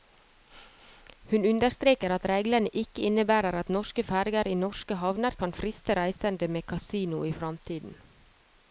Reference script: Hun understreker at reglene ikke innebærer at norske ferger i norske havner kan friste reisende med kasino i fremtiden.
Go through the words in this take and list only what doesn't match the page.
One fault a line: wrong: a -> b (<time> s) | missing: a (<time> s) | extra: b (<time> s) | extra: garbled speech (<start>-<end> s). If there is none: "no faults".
no faults